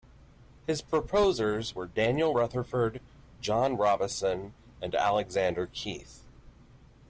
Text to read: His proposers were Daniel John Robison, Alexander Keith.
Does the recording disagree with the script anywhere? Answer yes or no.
yes